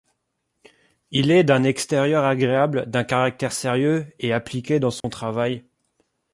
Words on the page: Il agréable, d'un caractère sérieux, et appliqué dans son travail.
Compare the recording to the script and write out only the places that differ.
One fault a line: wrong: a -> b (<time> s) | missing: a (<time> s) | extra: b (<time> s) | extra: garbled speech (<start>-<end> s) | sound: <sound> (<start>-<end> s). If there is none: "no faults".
extra: est d'un extérieur (1.3 s)
sound: dropout (5.0-5.0 s)